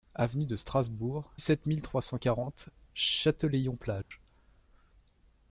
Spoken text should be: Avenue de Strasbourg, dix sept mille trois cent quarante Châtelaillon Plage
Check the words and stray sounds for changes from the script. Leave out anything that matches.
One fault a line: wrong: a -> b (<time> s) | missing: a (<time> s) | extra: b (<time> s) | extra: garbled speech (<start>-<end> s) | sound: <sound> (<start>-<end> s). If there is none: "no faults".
missing: dix (1.3 s)
sound: dropout (4.0-4.1 s)